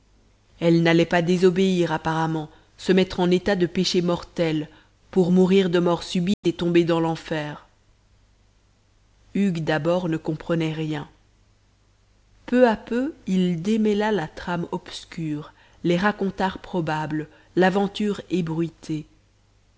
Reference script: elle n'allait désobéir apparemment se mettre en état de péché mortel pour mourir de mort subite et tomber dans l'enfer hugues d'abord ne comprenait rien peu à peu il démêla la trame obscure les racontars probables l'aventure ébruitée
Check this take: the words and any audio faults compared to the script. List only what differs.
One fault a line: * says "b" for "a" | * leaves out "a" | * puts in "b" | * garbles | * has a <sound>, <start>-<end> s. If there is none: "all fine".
* puts in "pas"
* has a dropout, 6.3-6.4 s